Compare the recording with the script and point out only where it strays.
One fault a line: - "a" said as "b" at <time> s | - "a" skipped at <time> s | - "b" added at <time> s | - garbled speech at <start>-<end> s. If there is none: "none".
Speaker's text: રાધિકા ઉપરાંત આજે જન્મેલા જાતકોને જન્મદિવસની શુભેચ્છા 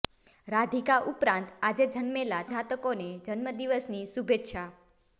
none